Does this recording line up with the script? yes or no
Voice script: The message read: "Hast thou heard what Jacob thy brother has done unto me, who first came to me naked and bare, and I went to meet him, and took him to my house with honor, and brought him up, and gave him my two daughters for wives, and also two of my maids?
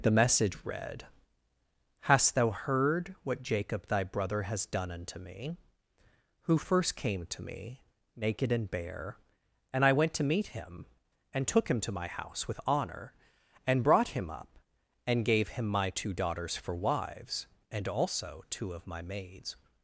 yes